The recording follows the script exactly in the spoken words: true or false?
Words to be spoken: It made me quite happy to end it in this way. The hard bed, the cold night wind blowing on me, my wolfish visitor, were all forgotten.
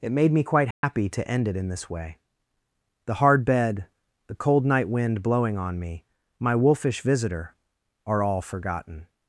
false